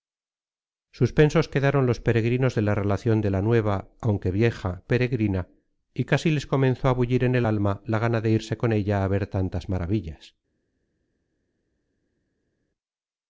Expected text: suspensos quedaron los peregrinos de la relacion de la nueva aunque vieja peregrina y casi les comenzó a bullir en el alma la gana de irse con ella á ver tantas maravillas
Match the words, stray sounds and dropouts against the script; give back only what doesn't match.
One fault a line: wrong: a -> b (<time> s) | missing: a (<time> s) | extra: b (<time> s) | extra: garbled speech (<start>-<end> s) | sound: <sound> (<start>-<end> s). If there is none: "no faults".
no faults